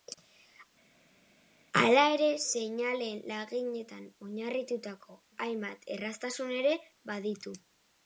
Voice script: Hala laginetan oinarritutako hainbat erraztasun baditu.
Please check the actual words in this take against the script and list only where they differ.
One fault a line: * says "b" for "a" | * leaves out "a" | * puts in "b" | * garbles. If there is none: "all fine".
* puts in "ere seinaleen"
* puts in "ere"